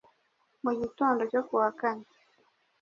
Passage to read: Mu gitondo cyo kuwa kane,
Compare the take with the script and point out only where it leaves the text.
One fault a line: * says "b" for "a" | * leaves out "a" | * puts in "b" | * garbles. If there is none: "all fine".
all fine